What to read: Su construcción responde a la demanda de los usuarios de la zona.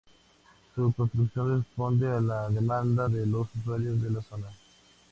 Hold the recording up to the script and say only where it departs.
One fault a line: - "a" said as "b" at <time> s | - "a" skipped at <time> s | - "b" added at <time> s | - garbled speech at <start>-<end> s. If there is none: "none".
none